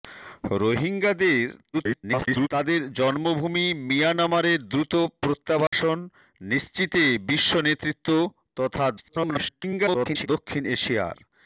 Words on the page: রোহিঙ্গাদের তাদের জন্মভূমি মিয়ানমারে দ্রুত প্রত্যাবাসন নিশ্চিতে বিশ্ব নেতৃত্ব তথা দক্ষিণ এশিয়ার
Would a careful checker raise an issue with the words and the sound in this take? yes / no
yes